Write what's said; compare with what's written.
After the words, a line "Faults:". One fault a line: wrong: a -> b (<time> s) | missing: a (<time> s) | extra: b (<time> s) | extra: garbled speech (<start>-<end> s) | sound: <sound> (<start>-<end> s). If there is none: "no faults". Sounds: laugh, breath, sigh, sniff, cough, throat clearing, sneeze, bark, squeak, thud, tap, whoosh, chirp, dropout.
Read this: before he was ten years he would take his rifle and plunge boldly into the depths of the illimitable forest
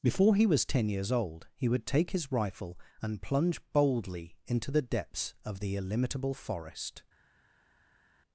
before he was ten years old he would take his rifle and plunge boldly into the depths of the illimitable forest
Faults:
extra: old (1.1 s)